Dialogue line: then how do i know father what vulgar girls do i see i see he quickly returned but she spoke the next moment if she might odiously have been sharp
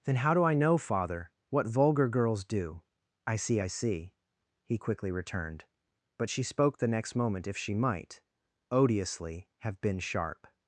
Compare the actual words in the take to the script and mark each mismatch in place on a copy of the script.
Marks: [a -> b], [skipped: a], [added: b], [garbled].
then how do i know father what vulgar girls do i see i see he quickly returned but she spoke the next moment if she might odiously have been sharp